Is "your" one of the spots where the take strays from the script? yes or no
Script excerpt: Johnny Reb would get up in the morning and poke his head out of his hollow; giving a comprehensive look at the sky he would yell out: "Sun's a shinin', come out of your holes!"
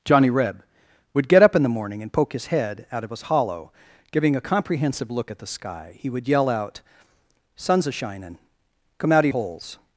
yes